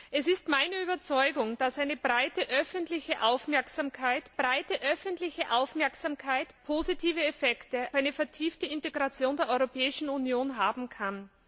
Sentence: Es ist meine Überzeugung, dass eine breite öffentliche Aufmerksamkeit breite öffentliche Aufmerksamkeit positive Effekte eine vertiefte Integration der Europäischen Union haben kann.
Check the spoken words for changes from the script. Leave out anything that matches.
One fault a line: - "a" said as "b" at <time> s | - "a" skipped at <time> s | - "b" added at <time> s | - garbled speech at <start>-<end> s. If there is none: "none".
none